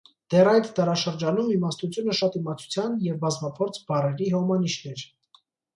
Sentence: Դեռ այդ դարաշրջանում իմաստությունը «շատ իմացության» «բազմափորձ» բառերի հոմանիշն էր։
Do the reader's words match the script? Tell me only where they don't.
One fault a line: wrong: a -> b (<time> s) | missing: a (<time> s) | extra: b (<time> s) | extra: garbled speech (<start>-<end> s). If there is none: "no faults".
extra: և (3.1 s)